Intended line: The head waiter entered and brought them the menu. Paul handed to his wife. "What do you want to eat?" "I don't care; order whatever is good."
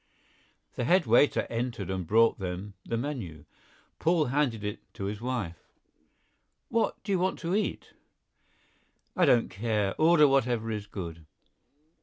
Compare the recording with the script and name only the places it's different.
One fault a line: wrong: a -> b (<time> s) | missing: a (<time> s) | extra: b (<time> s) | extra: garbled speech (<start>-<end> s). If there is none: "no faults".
extra: it (4.6 s)